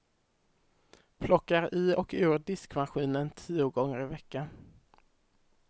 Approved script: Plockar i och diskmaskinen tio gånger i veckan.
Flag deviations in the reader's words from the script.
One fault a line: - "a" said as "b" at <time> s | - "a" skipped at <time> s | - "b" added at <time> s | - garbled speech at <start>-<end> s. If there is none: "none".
- "ur" added at 2.1 s